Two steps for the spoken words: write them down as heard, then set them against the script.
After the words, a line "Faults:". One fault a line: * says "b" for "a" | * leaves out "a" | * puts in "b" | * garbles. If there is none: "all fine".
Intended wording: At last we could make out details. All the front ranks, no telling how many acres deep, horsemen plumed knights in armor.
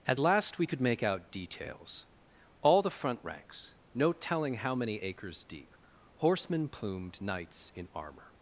At last we could make out details. All the front ranks, no telling how many acres deep, horsemen plumed knights in armor.
Faults:
all fine